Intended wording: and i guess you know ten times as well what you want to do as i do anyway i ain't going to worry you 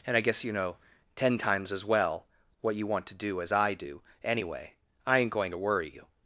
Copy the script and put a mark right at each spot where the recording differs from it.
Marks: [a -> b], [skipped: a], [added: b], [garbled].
and i guess you know ten times as well what you want to do as i do anyway i ain't going to worry you